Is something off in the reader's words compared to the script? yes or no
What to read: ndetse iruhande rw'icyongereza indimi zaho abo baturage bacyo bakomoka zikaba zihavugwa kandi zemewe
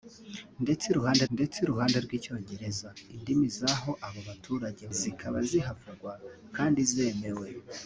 yes